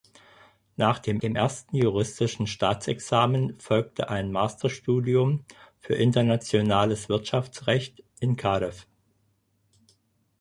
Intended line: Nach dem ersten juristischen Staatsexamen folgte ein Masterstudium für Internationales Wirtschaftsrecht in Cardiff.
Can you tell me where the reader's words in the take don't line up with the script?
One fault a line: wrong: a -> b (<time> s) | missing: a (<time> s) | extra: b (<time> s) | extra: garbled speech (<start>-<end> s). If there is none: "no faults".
extra: dem (1.1 s)